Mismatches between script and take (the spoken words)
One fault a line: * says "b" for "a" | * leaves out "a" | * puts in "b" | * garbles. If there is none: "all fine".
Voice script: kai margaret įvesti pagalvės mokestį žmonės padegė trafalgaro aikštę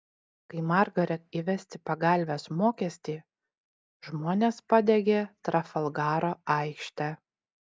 all fine